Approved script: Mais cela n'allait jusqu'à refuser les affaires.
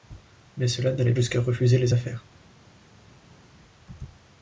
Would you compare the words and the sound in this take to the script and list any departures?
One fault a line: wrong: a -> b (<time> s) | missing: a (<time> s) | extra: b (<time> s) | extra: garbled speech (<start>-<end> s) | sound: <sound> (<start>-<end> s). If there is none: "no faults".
no faults